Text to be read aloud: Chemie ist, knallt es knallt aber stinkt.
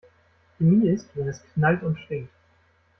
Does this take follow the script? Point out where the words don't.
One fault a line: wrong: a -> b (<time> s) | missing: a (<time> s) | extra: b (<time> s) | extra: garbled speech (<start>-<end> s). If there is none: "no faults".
wrong: knallt -> wenn (1.1 s)
wrong: aber -> und (1.8 s)